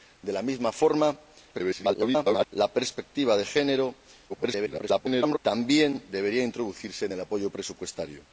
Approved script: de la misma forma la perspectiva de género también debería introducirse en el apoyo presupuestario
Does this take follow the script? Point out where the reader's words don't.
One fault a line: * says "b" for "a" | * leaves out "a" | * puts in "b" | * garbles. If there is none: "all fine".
* garbles
* garbles